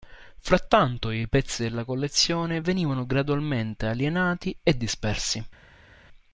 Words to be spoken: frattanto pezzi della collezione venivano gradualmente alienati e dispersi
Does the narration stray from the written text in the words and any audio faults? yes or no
yes